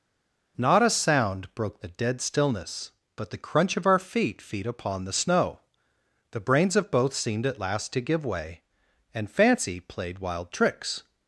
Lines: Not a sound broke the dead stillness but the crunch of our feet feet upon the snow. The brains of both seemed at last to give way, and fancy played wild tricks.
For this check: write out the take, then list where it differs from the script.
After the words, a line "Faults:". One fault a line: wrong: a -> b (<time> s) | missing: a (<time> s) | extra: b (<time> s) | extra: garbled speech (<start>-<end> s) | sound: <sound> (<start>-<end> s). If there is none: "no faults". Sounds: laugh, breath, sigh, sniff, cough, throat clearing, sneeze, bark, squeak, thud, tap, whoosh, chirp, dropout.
Not a sound broke the dead stillness but the crunch of our feet feet upon the snow. The brains of both seemed at last to give way, and fancy played wild tricks.
Faults:
no faults